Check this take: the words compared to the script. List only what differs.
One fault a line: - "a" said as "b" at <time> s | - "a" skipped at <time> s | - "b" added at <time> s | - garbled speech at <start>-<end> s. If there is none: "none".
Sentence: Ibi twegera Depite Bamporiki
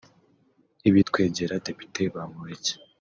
none